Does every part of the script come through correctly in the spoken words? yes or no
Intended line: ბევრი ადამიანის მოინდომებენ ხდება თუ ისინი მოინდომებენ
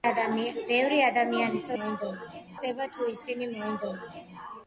yes